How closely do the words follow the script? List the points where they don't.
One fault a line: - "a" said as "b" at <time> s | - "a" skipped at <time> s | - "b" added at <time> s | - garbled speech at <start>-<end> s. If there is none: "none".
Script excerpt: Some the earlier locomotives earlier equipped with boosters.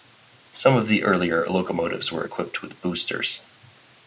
- "of" added at 0.8 s
- "earlier" said as "were" at 2.1 s